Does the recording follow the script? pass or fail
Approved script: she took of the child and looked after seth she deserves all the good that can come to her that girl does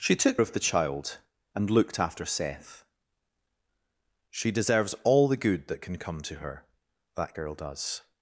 pass